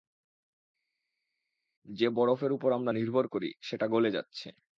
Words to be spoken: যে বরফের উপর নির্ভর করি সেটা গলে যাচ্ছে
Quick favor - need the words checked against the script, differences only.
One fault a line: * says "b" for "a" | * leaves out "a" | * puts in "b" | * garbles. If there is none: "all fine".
* puts in "আমরা"